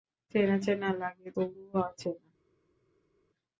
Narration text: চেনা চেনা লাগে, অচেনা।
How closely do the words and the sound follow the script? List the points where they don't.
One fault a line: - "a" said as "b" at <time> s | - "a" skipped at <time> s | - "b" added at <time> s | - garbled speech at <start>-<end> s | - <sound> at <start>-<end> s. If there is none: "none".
- "তবুও" added at 1.3 s